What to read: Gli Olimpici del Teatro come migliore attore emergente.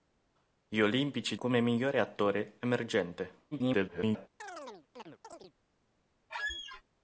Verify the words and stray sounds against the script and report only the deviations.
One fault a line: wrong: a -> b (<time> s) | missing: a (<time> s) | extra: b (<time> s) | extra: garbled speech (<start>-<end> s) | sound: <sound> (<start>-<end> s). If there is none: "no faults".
missing: del Teatro (1.4 s)
extra: garbled speech (3.5-4.3 s)
sound: chirp (4.4-5.5 s)
sound: squeak (6.3-6.8 s)